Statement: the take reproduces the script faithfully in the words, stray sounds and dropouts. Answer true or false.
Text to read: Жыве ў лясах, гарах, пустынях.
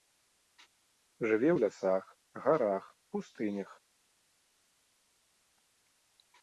true